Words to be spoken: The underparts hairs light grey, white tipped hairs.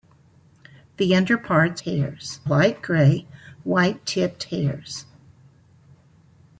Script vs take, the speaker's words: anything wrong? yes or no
no